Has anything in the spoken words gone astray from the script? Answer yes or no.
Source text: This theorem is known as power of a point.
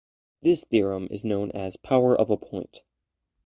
no